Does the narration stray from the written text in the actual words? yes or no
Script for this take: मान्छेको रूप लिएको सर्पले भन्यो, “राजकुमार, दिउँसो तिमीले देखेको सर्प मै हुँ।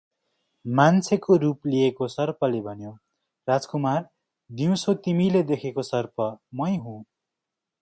no